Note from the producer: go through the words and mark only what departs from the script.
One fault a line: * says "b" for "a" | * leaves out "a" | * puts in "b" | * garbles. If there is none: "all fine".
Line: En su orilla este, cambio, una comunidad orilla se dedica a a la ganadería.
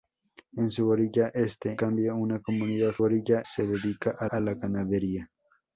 all fine